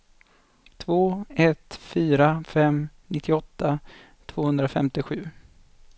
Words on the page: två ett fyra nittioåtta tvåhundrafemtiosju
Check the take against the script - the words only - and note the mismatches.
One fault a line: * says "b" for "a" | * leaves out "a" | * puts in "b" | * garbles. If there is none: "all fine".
* puts in "fem"